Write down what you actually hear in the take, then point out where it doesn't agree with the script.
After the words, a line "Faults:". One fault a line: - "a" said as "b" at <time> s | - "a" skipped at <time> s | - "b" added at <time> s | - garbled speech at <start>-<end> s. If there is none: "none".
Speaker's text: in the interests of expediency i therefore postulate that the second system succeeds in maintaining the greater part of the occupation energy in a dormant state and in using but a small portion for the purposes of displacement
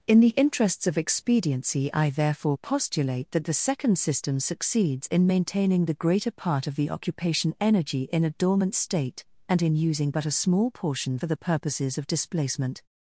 in the interests of expediency i therefore postulate that the second system succeeds in maintaining the greater part of the occupation energy in a dormant state and in using but a small portion for the purposes of displacement
Faults:
none